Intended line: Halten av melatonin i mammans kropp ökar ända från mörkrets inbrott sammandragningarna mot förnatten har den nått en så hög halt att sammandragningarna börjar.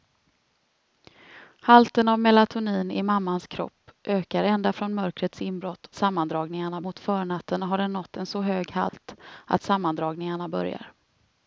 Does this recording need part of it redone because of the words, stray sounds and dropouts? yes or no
yes